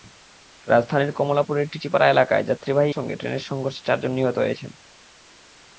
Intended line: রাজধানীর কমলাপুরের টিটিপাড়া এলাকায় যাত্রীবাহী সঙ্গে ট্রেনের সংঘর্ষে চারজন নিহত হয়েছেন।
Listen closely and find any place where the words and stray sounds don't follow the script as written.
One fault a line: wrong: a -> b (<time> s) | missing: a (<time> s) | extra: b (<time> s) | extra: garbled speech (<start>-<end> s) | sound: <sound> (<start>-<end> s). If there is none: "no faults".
no faults